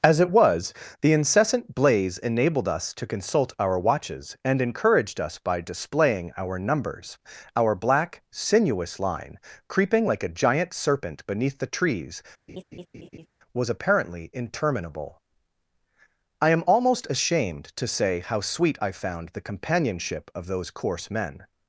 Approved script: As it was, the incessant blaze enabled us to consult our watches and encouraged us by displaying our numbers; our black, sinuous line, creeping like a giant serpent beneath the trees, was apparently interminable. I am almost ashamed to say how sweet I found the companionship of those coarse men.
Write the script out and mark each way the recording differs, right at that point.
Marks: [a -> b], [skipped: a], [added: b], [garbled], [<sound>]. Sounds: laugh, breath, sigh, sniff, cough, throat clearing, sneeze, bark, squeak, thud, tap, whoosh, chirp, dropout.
As it was, the incessant blaze enabled us to consult our watches and encouraged us by displaying our numbers; our black, sinuous line, creeping like a giant serpent beneath the trees, [laugh] was apparently interminable. I am almost ashamed to say how sweet I found the companionship of those coarse men.